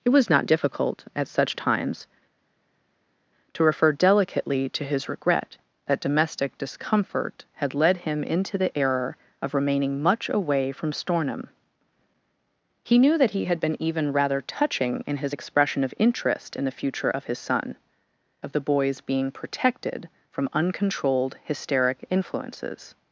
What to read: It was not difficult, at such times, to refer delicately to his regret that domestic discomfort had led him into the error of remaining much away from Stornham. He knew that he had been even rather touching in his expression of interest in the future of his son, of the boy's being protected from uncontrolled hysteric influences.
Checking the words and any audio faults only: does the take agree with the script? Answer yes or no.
yes